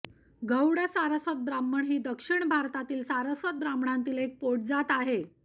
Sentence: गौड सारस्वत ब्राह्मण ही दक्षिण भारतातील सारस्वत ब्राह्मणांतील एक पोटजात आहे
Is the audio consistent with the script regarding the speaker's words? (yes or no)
yes